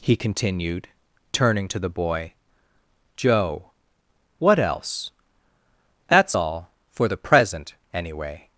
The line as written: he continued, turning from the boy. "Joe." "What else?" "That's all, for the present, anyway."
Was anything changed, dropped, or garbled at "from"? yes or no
yes